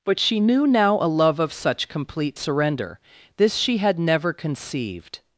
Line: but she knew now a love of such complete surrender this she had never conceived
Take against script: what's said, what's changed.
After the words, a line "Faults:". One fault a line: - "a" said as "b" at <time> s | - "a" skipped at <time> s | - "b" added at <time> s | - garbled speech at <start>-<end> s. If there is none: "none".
but she knew now a love of such complete surrender this she had never conceived
Faults:
none